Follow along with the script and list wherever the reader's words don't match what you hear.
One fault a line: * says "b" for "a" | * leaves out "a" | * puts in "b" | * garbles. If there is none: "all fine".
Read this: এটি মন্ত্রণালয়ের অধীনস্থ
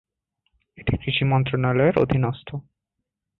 * puts in "কৃষি"